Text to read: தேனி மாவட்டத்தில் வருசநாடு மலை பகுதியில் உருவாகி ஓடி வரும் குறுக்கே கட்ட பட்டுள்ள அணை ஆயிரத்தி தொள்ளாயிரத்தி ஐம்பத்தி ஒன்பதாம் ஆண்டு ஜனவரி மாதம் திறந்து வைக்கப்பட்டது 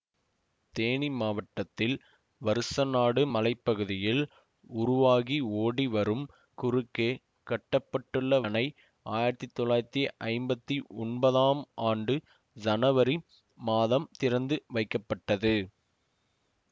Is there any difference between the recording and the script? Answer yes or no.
no